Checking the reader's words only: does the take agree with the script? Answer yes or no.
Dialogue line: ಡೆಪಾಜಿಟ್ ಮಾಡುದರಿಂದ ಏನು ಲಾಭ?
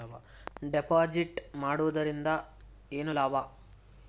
yes